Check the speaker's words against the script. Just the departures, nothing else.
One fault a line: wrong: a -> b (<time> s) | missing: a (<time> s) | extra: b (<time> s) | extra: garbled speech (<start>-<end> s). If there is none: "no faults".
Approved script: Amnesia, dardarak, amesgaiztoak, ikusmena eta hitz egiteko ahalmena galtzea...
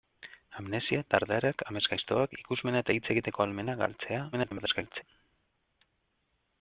extra: garbled speech (4.3-5.0 s)